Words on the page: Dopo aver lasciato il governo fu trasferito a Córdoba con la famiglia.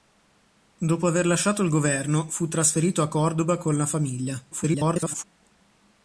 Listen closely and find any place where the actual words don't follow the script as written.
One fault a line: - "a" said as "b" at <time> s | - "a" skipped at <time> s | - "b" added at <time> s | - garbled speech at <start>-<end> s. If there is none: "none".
- garbled speech at 4.5-5.2 s